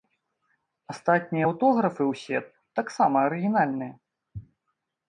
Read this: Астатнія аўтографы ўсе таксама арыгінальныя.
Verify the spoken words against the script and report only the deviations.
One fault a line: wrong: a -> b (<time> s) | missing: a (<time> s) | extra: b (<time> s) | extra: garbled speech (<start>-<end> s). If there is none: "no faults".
no faults